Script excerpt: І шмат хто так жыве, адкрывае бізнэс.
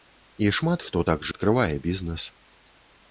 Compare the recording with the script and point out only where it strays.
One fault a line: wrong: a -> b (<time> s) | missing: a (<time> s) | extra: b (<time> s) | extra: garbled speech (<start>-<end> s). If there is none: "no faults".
missing: жыве (1.3 s)